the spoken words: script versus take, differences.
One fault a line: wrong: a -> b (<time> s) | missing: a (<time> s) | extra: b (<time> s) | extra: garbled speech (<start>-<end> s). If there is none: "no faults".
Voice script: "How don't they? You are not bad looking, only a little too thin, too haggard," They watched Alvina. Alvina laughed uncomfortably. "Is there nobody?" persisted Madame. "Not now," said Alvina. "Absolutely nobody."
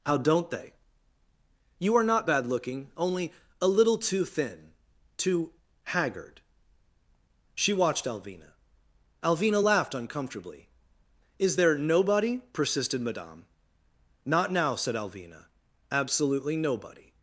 wrong: They -> She (7.6 s)